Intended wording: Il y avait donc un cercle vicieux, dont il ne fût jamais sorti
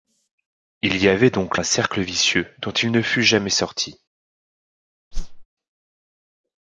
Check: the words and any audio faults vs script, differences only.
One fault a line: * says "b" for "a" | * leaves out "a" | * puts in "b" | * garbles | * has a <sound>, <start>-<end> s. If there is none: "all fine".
* has a whoosh, 5.1-5.5 s